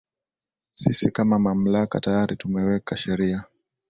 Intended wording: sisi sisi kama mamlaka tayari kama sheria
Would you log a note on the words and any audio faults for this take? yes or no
yes